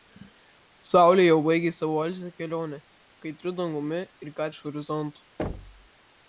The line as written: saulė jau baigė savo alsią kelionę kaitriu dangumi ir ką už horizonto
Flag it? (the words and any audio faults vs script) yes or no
yes